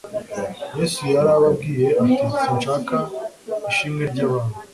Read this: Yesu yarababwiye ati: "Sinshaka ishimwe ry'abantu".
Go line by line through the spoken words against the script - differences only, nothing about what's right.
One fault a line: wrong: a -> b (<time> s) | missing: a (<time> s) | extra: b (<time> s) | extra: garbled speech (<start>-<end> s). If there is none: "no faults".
no faults